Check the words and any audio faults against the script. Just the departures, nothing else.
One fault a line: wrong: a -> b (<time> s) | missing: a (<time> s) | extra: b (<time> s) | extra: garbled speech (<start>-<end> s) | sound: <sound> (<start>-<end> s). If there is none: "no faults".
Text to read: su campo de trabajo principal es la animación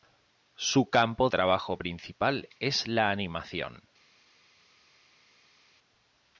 missing: de (1.3 s)